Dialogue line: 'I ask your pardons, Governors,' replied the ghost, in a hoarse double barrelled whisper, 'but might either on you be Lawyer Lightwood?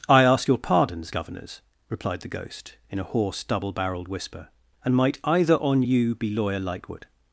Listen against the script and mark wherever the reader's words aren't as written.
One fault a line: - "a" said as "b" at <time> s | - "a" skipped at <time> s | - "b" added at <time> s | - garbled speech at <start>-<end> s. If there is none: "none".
- "but" said as "and" at 4.8 s